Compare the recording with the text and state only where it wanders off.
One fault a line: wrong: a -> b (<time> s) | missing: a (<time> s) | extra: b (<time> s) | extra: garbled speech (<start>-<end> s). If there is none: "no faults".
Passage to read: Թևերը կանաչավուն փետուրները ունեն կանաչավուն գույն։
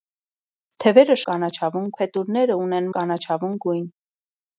no faults